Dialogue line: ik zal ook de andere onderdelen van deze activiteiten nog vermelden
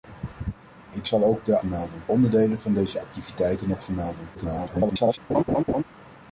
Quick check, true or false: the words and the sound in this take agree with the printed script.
false